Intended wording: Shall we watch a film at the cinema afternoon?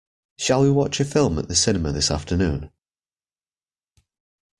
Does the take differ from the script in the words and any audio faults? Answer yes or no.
yes